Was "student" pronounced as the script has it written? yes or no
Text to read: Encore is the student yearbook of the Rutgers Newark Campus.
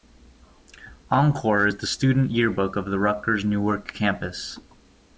yes